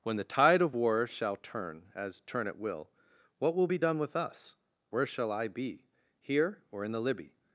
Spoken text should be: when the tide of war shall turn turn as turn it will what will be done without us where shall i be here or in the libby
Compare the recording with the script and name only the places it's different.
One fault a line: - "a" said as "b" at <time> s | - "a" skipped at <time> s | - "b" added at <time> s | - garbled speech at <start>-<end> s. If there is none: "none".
- "turn" skipped at 1.9 s
- "without" said as "with" at 4.0 s